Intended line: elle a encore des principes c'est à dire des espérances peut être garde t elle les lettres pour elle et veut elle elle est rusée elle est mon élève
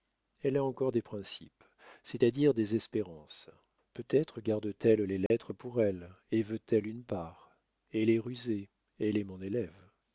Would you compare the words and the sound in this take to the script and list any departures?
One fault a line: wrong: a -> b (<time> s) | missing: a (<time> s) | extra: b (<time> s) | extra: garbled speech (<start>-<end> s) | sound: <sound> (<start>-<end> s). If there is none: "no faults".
sound: dropout (5.3-5.3 s)
extra: une part (6.9 s)